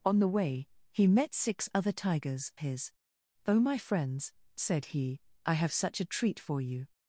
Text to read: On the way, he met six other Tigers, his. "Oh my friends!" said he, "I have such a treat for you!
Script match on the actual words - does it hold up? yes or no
yes